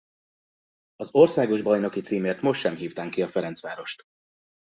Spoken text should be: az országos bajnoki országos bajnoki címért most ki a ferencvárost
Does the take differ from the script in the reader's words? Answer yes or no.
yes